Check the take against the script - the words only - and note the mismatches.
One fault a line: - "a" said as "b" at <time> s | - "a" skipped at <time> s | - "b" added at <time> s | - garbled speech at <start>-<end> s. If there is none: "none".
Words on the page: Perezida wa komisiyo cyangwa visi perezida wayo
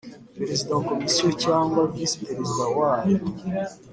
none